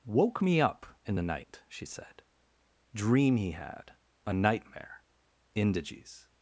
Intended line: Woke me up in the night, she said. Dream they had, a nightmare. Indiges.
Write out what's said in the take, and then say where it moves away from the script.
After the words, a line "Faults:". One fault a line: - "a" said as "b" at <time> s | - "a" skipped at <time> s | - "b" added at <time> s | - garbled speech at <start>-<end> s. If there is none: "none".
Woke me up in the night, she said. Dream he had, a nightmare. Indiges.
Faults:
- "they" said as "he" at 3.4 s